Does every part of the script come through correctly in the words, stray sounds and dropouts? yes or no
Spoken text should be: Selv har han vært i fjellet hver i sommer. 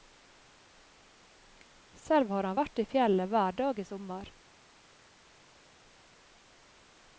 no